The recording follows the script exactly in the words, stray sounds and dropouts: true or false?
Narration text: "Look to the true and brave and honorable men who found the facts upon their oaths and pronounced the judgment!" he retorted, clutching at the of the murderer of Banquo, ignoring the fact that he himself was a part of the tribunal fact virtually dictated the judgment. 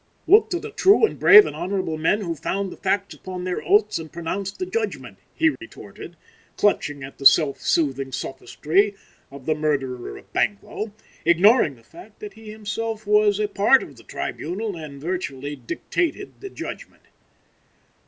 false